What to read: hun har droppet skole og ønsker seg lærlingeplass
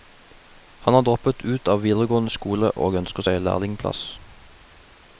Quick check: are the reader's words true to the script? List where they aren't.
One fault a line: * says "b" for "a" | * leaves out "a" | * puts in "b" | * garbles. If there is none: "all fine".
* says "han" for "hun"
* puts in "ut av videregående"